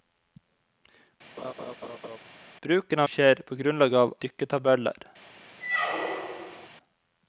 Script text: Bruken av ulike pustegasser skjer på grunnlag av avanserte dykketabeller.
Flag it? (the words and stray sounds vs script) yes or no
yes